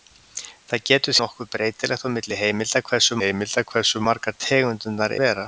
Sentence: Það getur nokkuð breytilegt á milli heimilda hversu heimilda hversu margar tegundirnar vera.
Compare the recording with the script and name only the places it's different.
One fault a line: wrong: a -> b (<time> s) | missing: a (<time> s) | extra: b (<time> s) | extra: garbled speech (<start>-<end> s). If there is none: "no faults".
no faults